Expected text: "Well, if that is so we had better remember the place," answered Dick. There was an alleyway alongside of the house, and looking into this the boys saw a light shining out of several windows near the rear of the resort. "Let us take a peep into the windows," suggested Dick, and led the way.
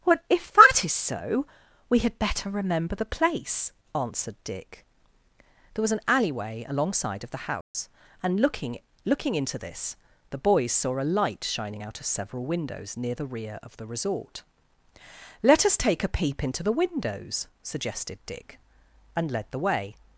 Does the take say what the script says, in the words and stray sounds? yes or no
no